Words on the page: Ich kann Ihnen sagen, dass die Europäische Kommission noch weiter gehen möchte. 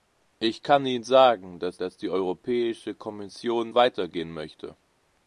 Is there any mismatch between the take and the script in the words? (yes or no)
yes